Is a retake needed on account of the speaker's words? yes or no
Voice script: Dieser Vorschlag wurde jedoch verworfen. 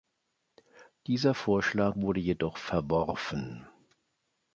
no